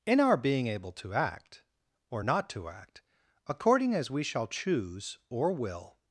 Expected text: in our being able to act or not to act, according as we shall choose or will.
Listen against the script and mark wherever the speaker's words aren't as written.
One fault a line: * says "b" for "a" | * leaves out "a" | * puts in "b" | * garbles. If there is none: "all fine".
all fine